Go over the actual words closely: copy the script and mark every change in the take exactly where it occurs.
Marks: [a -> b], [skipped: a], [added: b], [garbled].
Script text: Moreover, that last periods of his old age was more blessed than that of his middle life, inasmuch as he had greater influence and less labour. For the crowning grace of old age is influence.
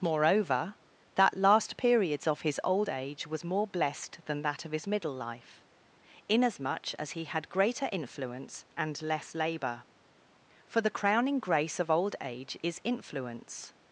Moreover, that last periods of his old age was more blessed than that of his middle life, inasmuch as he had greater influence and less labour. For the crowning grace of old age is influence.